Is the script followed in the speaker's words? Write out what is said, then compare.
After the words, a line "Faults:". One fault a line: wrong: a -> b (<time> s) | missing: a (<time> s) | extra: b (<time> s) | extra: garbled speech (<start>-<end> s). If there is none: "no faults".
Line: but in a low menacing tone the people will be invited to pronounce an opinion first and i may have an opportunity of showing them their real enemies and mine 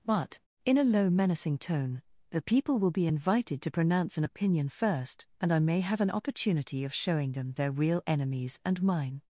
but in a low menacing tone the people will be invited to pronounce an opinion first and i may have an opportunity of showing them their real enemies and mine
Faults:
no faults